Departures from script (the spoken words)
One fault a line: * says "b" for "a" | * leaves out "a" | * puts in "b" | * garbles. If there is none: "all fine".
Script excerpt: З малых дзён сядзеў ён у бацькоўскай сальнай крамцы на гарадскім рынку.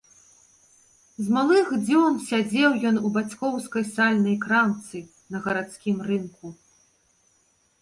all fine